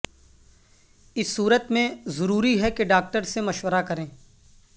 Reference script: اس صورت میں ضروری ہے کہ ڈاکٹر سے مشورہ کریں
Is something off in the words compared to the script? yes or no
no